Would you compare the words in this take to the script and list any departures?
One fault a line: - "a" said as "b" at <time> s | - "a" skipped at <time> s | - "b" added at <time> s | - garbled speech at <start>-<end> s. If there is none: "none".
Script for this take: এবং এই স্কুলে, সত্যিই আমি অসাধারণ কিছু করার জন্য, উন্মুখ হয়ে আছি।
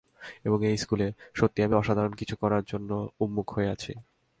none